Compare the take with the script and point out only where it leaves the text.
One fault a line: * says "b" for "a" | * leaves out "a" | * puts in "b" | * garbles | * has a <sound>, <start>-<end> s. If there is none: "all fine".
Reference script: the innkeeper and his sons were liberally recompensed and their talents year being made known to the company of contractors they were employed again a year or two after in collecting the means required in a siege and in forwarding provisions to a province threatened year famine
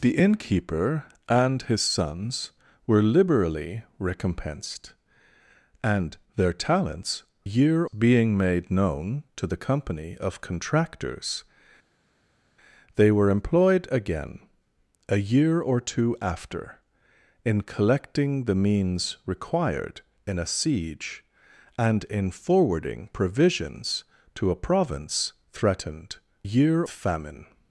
all fine